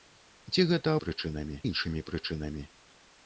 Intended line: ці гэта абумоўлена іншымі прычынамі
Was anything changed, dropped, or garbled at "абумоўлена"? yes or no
yes